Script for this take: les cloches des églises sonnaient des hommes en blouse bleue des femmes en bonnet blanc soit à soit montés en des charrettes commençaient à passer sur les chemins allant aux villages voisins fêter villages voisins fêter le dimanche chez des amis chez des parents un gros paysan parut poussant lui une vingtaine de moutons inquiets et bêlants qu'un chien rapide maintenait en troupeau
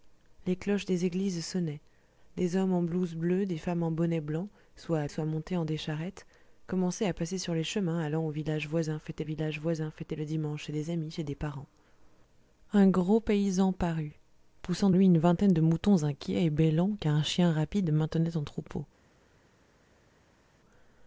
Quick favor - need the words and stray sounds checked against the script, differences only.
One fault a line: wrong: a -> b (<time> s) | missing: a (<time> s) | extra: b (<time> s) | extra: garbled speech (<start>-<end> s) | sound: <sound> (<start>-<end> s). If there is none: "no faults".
no faults